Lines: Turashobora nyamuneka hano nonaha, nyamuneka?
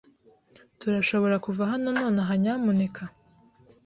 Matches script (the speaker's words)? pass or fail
fail